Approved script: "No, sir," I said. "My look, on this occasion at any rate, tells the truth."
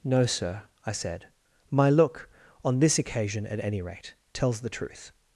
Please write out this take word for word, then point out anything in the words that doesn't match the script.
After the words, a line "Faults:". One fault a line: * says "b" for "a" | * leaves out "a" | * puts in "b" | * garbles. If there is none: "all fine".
"No, sir," I said. "My look, on this occasion at any rate, tells the truth."
Faults:
all fine